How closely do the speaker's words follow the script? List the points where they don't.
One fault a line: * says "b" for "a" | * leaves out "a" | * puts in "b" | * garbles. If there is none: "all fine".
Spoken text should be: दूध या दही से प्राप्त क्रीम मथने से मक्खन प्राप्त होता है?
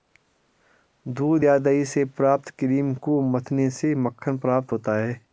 * puts in "को"